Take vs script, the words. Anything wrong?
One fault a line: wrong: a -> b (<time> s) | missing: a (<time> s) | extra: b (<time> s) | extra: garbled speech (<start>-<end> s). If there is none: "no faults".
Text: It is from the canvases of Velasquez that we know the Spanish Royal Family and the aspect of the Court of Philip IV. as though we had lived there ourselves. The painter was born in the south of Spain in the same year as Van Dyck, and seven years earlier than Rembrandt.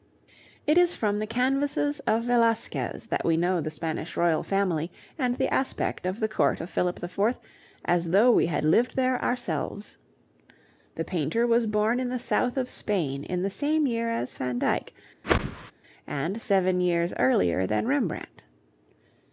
no faults